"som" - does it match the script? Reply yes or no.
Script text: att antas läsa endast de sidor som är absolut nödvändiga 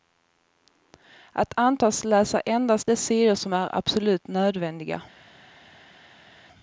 yes